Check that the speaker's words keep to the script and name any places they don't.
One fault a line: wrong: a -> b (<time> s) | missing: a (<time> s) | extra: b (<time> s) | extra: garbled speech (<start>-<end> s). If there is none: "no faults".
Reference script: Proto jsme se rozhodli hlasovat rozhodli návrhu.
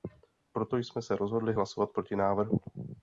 wrong: rozhodli -> proti (1.9 s)